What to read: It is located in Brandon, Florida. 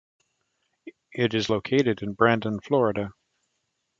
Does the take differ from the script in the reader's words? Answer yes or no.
no